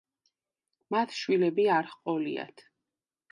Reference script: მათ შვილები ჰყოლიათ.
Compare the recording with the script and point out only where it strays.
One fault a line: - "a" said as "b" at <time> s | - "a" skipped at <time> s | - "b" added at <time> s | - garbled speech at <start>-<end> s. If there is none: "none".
- "არ" added at 1.8 s